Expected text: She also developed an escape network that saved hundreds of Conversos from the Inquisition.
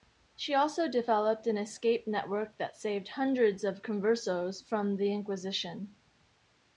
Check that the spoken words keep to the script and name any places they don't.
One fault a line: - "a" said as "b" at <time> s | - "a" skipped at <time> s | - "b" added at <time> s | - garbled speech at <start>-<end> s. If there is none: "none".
none